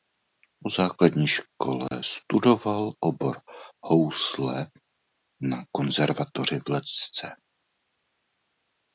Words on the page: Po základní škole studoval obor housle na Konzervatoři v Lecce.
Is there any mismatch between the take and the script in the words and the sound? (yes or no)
yes